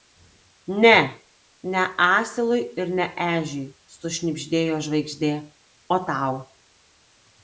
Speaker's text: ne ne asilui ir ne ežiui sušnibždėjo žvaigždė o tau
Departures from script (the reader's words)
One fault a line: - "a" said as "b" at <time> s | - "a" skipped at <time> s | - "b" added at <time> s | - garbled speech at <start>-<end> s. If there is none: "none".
none